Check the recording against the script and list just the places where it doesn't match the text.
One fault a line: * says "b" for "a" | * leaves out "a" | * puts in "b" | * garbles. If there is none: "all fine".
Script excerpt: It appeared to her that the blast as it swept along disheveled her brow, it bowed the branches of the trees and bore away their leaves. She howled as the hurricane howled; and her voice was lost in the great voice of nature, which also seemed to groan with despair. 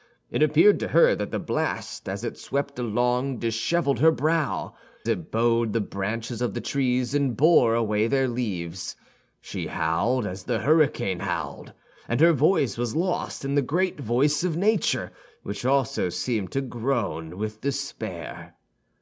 all fine